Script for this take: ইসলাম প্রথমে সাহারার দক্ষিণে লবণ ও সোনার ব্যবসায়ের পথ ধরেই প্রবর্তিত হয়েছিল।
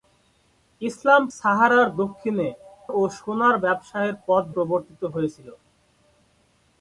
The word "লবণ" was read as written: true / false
false